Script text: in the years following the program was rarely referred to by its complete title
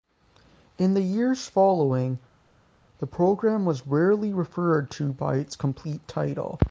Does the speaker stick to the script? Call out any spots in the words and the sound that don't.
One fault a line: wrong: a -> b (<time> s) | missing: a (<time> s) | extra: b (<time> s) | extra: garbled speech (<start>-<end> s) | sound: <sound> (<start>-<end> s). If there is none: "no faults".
no faults